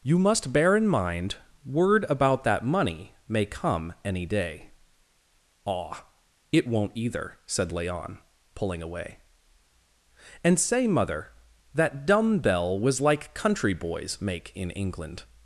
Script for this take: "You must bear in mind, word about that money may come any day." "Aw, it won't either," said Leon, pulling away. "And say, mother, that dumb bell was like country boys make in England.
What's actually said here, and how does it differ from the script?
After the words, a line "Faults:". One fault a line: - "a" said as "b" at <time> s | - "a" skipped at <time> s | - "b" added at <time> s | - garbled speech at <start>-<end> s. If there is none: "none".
"You must bear in mind, word about that money may come any day." "Aw, it won't either," said Leon, pulling away. "And say, mother, that dumb bell was like country boys make in England.
Faults:
none